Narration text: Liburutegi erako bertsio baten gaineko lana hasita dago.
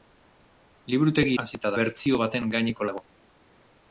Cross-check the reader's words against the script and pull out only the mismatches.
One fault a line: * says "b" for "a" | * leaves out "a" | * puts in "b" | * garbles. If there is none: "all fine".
* says "hasita" for "erako"
* leaves out "lana hasita"